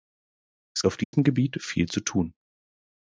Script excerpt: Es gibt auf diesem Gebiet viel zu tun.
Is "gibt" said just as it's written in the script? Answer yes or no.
no